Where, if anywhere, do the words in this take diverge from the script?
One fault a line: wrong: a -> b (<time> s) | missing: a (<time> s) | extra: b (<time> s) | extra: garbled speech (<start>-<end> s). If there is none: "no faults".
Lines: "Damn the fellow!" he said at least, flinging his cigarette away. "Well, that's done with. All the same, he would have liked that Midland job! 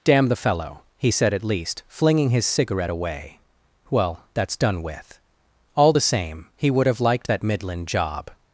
no faults